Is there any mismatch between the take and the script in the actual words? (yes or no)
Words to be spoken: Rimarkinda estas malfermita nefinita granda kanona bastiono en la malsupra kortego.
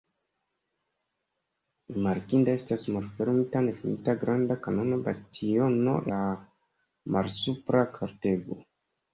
yes